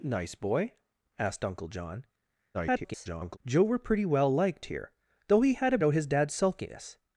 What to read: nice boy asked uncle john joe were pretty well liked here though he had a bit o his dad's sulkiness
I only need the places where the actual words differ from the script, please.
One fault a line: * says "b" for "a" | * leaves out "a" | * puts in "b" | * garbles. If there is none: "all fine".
* garbles
* leaves out "bit"